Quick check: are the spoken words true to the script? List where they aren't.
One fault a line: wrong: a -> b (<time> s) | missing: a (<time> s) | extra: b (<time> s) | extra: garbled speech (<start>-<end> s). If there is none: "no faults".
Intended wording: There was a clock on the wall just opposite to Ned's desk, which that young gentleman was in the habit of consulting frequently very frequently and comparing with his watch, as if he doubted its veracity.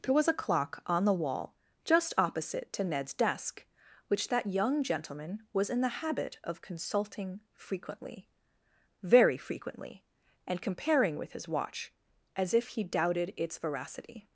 no faults